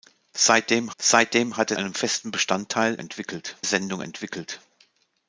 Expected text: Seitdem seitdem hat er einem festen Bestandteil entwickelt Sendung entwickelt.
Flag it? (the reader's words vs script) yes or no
no